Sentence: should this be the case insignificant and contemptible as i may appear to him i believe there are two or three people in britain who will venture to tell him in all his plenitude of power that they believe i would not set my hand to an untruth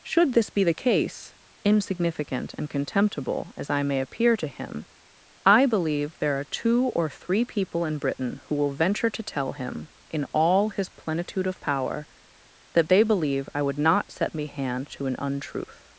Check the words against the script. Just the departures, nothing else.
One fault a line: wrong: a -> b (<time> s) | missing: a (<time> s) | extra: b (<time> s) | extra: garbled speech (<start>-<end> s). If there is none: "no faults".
wrong: my -> me (14.3 s)